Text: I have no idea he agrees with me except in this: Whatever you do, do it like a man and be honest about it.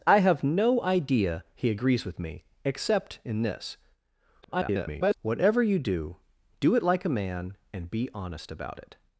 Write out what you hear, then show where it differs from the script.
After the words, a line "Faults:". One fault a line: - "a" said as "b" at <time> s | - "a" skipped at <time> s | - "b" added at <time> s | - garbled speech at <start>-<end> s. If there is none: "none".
I have no idea he agrees with me except in this: [garbled] Whatever you do, do it like a man and be honest about it.
Faults:
- garbled speech at 4.4-5.1 s